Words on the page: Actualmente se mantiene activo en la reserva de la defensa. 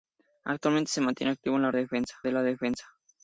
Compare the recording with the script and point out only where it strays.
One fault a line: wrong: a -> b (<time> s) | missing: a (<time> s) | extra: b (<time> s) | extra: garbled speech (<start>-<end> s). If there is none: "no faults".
wrong: reserva -> defensa (1.7 s)